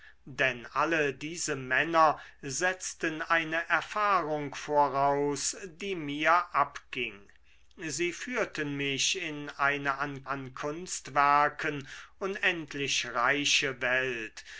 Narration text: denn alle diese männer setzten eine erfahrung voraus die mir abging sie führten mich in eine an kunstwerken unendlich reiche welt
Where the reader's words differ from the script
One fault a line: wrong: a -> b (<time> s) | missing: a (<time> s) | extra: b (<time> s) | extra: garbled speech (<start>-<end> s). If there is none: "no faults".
extra: an (10.3 s)